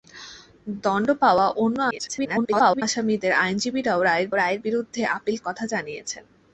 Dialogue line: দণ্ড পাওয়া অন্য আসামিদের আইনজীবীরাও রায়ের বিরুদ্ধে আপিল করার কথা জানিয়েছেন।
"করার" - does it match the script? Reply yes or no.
no